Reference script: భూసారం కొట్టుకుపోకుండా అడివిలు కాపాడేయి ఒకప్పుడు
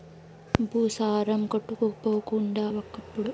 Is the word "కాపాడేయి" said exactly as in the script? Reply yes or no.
no